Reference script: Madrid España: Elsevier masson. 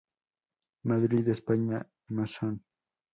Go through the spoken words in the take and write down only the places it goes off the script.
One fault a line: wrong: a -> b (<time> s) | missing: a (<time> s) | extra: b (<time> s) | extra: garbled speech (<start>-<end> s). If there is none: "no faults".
missing: Elsevier (1.9 s)